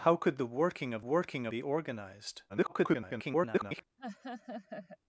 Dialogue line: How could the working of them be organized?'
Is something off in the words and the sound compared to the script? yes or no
yes